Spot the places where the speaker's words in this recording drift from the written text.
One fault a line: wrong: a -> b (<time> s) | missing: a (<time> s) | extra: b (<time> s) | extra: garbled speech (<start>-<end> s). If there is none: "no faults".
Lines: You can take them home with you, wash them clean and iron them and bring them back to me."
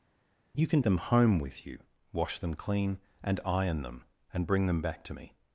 missing: take (0.8 s)